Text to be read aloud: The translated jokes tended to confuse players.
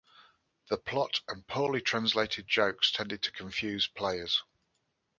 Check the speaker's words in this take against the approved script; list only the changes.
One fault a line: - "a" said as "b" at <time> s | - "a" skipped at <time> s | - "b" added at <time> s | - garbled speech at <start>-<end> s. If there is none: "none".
- "plot and poorly" added at 0.7 s